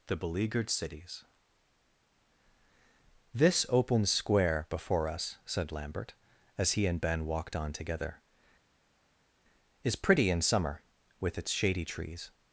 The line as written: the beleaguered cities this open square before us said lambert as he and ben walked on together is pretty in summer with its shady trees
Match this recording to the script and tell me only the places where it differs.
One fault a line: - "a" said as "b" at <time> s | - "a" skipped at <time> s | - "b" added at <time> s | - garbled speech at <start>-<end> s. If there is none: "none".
none